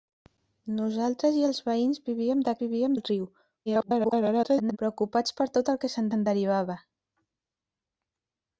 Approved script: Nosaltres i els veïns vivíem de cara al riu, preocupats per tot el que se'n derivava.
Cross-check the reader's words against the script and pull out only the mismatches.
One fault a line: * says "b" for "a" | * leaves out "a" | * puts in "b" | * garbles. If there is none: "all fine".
* says "vivíem" for "cara"
* garbles
* puts in "se'n"